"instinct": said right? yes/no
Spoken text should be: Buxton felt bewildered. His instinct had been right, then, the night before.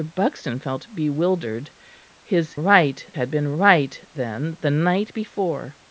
no